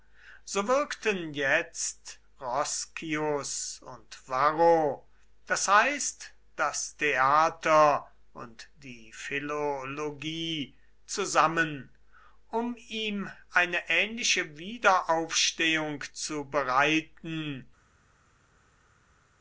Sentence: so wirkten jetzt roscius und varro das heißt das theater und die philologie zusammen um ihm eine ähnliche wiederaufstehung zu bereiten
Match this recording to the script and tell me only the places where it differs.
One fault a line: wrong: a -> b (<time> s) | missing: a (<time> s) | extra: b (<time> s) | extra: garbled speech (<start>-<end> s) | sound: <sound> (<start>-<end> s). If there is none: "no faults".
no faults